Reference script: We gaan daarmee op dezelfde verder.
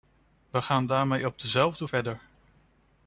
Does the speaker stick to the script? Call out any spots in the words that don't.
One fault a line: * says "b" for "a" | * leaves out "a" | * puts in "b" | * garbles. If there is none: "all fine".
all fine